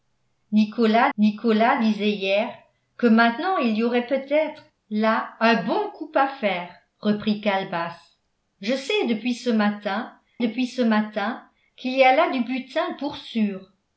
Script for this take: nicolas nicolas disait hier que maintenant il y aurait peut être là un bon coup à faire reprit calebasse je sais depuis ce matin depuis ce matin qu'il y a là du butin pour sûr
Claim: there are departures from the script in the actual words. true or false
false